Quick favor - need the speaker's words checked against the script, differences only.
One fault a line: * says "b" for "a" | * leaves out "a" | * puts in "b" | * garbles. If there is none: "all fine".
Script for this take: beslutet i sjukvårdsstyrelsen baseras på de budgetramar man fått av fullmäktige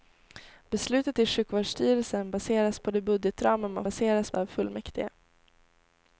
* says "baseras" for "fått"